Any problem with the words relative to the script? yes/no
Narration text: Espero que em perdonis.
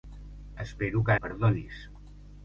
no